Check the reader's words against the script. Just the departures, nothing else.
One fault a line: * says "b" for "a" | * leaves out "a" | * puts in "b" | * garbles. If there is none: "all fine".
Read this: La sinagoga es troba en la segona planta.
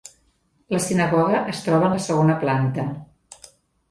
all fine